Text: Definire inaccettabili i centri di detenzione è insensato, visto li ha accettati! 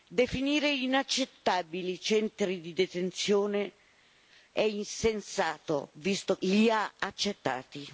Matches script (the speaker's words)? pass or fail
pass